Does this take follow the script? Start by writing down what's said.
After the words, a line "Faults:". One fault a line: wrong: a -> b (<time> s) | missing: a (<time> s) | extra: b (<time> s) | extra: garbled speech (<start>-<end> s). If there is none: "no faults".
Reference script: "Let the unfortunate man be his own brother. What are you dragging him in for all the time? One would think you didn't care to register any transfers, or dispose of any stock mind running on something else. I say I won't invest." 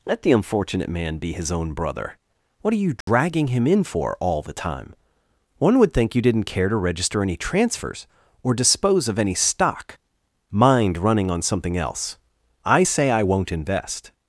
"Let the unfortunate man be his own brother. What are you dragging him in for all the time? One would think you didn't care to register any transfers, or dispose of any stock mind running on something else. I say I won't invest."
Faults:
no faults